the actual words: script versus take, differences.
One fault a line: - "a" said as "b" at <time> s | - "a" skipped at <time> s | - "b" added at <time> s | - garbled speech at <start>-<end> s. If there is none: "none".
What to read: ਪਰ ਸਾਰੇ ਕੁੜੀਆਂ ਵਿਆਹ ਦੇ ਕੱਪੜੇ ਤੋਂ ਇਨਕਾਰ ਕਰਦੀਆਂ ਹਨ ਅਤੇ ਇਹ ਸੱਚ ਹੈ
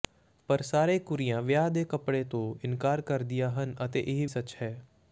none